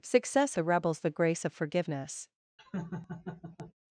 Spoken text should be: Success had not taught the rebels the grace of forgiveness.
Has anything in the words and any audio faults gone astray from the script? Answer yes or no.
yes